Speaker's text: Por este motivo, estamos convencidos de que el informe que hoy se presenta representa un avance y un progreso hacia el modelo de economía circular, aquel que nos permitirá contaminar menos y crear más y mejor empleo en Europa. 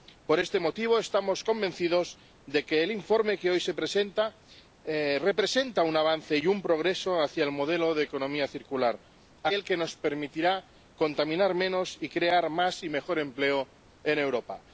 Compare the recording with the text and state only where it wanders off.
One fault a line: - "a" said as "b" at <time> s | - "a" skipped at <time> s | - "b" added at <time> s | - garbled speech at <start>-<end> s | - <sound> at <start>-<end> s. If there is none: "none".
none